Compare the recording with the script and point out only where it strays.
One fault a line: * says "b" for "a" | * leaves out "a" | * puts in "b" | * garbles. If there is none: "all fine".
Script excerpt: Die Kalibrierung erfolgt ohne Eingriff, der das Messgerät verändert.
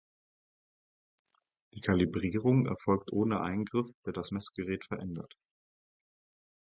all fine